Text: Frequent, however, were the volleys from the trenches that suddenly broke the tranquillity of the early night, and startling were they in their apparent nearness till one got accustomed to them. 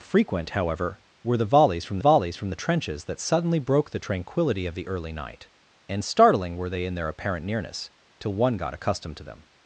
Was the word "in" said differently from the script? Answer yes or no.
no